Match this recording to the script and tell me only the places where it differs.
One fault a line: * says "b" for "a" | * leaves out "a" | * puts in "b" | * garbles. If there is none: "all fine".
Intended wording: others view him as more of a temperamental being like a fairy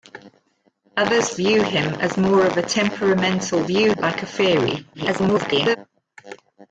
* says "view" for "being"
* garbles